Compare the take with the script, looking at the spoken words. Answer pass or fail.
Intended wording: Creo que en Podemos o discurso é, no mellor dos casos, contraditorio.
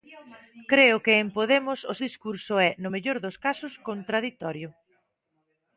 pass